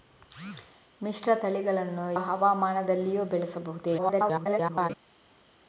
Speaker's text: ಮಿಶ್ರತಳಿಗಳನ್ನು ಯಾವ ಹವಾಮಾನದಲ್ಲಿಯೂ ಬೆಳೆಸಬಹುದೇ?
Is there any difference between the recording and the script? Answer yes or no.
yes